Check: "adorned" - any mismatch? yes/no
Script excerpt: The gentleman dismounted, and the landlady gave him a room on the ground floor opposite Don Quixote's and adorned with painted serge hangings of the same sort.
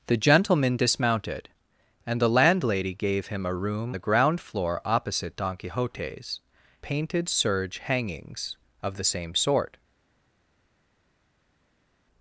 yes